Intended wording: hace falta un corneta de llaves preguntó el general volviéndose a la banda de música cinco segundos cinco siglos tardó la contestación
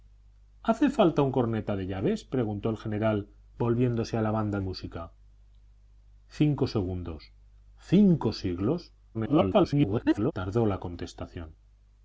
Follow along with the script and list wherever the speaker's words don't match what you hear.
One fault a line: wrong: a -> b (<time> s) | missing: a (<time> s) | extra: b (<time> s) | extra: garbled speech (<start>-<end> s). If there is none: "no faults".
missing: de (4.6 s)
extra: garbled speech (9.1-10.3 s)